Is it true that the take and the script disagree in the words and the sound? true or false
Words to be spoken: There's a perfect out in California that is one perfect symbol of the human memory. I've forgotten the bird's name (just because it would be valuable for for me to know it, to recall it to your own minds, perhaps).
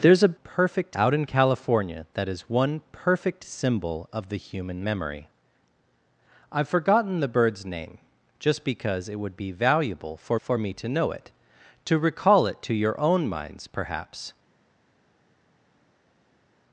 false